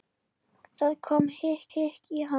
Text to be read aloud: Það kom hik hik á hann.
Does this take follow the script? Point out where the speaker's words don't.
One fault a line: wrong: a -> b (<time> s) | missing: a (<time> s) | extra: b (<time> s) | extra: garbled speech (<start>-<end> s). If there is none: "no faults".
no faults